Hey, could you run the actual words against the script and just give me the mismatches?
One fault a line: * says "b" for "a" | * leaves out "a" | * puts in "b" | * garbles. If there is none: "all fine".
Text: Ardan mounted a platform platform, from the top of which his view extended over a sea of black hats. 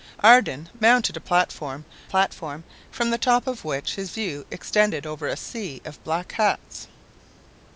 all fine